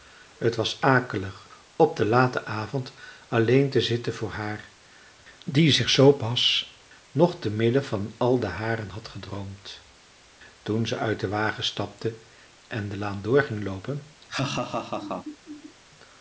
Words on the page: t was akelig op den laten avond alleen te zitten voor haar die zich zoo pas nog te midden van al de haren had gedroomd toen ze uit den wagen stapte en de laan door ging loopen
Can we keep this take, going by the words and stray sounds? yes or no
no